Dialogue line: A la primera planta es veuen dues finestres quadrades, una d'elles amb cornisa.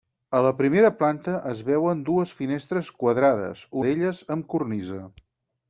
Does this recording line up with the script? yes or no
no